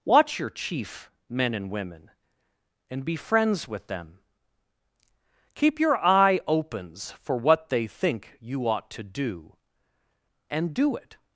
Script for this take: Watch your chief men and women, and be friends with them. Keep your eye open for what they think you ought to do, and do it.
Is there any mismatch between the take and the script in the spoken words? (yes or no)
yes